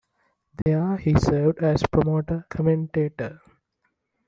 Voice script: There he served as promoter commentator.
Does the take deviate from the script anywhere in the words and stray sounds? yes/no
yes